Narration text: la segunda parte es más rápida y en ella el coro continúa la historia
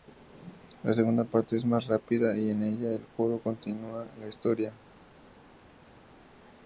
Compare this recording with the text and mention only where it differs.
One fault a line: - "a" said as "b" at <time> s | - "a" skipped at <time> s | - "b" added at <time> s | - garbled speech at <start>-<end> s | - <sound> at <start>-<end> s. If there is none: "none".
none